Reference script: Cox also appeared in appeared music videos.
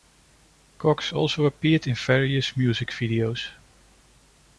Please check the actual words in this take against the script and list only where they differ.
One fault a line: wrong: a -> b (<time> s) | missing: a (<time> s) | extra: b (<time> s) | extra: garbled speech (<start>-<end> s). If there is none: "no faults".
wrong: appeared -> various (1.9 s)